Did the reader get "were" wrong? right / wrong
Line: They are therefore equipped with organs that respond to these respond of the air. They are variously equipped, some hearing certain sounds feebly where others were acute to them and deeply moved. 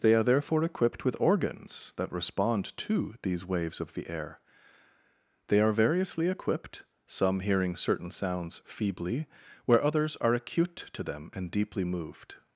wrong